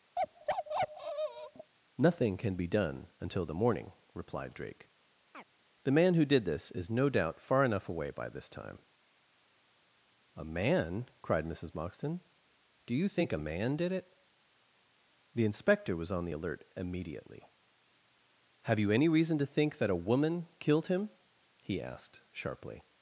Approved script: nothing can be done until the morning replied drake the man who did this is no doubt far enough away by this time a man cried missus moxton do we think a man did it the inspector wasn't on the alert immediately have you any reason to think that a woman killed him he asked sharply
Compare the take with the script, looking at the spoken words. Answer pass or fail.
fail